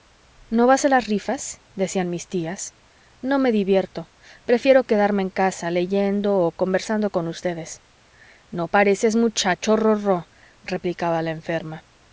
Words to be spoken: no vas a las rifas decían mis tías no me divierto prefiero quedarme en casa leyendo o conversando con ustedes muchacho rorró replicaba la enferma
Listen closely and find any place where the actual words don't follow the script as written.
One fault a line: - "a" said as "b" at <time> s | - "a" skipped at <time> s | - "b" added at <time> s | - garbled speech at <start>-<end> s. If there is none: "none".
- "no pareces" added at 8.5 s